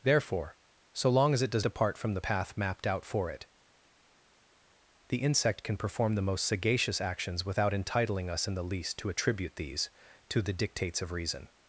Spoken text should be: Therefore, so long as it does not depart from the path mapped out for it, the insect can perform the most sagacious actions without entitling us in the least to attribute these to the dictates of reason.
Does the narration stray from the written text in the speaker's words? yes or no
yes